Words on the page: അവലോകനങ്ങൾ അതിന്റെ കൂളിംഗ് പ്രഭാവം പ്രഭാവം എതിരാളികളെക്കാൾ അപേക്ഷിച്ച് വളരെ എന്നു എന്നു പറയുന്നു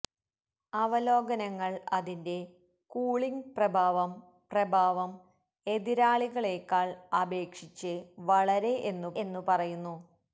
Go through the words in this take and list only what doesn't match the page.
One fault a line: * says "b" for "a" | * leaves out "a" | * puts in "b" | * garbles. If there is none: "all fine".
all fine